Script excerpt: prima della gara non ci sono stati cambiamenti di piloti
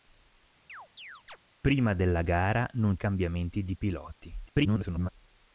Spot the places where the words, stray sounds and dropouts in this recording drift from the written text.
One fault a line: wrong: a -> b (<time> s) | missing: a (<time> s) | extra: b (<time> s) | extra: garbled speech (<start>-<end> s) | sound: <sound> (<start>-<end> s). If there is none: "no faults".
sound: chirp (0.7-1.4 s)
missing: ci sono stati (3.0 s)
extra: garbled speech (4.5-5.1 s)